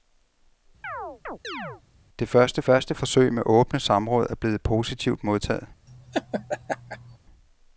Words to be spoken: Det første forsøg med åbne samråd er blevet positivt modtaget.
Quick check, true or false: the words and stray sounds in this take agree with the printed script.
false